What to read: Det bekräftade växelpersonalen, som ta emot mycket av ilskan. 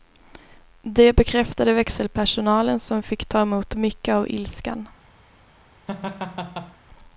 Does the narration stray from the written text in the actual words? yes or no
yes